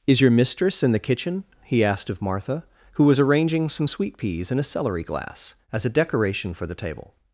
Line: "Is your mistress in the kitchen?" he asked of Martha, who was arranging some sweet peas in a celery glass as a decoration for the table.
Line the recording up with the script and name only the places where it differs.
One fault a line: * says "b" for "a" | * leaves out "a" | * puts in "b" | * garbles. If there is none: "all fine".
all fine